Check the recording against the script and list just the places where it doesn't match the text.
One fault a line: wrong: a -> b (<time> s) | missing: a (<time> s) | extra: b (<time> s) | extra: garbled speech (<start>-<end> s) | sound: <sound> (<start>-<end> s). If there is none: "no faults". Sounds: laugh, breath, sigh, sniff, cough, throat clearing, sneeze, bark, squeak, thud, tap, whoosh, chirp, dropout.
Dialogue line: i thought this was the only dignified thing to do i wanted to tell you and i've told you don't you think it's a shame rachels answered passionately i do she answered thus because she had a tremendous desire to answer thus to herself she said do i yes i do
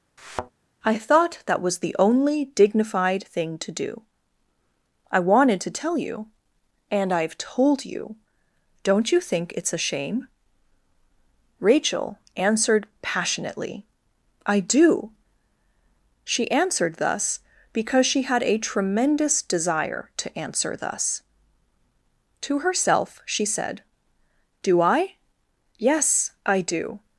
sound: thud (0.2-0.5 s)
wrong: this -> that (1.5 s)
wrong: rachels -> rachel (11.6 s)